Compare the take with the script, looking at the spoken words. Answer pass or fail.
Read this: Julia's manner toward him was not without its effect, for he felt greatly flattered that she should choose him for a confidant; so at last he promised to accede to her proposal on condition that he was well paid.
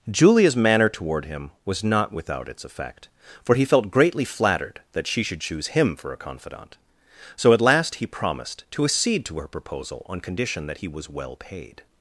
pass